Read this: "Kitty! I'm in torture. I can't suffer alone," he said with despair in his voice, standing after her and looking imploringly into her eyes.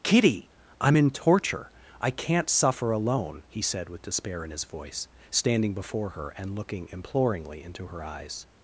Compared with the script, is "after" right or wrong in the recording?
wrong